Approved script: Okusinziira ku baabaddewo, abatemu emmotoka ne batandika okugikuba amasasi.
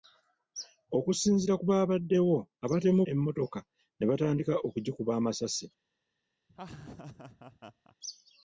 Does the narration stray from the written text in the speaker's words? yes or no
no